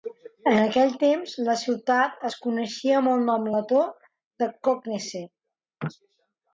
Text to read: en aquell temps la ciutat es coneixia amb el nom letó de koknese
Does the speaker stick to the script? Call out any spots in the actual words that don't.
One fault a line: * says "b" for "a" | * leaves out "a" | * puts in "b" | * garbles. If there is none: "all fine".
all fine